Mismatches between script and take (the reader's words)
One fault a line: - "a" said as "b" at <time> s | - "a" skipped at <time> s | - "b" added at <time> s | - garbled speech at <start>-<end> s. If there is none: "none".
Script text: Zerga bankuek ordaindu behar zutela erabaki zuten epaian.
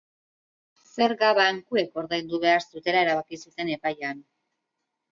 none